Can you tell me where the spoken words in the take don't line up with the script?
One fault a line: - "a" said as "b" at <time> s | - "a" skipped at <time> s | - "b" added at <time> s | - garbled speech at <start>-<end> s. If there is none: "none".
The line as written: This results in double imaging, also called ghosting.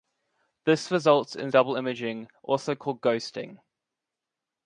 none